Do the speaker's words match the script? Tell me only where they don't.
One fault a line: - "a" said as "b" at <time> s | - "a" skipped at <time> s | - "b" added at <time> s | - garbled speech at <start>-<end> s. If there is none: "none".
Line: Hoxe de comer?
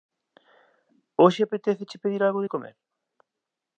- "apetéceche pedir algo" added at 1.4 s